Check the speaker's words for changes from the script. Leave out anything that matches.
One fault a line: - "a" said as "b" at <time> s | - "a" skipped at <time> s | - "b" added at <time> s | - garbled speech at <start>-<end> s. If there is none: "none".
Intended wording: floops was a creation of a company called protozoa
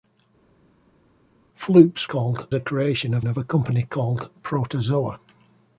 - "was" said as "called" at 2.1 s
- "of" added at 3.2 s